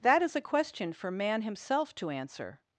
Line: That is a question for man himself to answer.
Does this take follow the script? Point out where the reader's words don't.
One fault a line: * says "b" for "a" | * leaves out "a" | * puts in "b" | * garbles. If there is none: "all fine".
all fine